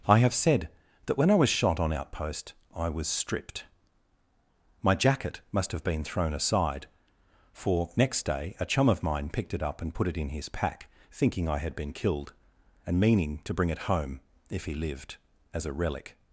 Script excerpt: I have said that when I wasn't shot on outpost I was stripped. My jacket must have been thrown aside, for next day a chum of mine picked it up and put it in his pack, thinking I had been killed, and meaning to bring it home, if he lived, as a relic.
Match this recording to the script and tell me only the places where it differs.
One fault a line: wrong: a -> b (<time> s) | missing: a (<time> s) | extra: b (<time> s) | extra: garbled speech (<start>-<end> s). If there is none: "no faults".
wrong: wasn't -> was (1.4 s)